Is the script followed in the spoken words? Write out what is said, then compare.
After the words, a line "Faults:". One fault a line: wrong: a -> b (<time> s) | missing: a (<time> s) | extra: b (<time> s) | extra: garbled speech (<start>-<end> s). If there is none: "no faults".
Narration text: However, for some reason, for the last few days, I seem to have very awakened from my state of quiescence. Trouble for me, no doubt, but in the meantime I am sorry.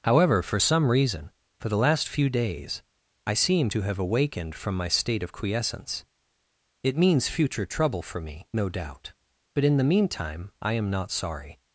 However, for some reason, for the last few days, I seem to have awakened from my state of quiescence. It means future trouble for me, no doubt, but in the meantime I am not sorry.
Faults:
missing: very (4.0 s)
extra: It means future (6.8 s)
extra: not (10.9 s)